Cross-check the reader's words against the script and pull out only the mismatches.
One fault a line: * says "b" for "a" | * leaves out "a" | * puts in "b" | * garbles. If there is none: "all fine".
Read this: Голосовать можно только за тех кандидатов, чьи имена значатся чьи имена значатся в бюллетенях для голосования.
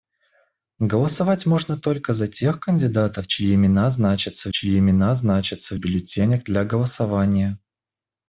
all fine